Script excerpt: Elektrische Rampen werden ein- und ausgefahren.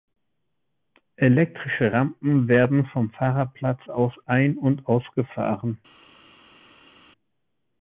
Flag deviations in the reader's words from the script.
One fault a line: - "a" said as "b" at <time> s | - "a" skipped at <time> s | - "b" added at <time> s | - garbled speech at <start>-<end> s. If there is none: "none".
- "vom Fahrerplatz aus" added at 2.9 s